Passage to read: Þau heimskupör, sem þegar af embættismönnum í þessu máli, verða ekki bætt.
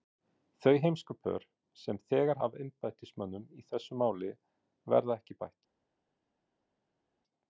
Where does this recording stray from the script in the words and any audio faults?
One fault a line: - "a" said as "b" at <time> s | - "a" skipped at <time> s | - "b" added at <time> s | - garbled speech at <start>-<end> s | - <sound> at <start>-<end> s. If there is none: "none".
none